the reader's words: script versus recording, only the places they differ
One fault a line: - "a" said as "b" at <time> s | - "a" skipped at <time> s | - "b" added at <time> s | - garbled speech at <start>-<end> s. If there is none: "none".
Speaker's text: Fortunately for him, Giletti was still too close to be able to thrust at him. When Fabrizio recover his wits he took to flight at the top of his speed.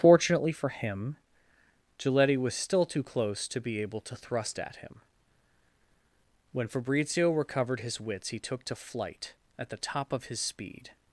- "recover" said as "recovered" at 7.3 s